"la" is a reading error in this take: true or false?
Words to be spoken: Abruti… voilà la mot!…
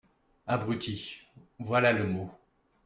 true